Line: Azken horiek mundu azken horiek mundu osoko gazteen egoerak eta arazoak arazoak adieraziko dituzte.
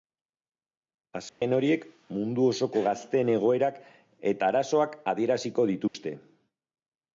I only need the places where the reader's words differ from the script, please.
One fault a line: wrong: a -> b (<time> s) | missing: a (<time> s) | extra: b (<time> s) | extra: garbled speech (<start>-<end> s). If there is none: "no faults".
missing: azken horiek mundu (2.5 s)
missing: arazoak (5.0 s)